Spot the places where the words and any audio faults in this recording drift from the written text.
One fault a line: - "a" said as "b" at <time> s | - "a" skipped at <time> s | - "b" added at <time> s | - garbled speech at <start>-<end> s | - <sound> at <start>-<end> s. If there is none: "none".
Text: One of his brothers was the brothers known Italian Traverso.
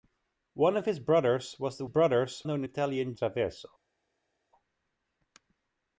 none